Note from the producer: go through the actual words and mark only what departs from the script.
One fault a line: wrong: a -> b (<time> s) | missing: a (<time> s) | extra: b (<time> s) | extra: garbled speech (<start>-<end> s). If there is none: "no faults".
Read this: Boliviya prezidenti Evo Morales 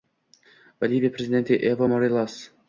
no faults